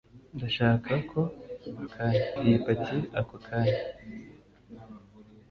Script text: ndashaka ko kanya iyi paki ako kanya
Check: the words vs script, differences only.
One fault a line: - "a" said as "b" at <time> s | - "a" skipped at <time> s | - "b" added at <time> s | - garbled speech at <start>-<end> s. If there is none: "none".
none